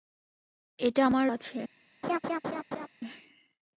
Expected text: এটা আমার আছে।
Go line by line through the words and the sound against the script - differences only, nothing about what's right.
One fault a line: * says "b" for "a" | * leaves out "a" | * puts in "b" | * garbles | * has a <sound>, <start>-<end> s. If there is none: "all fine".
* has a laugh, 2.0-2.9 s